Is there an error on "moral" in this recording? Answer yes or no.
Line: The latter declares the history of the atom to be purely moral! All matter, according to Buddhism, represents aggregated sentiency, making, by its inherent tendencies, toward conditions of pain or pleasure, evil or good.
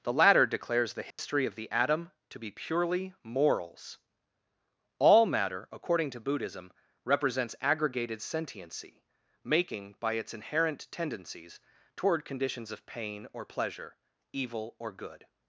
yes